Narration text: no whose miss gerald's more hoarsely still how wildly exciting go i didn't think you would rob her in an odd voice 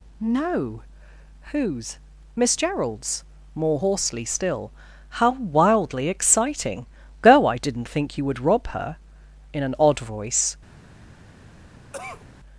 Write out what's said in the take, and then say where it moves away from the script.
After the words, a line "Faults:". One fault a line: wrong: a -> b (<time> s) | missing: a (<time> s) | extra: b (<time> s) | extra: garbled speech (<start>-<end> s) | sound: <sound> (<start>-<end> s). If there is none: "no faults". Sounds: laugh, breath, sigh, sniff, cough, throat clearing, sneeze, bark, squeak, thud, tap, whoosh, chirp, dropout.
no whose miss gerald's more hoarsely still how wildly exciting go i didn't think you would rob her in an odd voice
Faults:
sound: cough (11.9-12.3 s)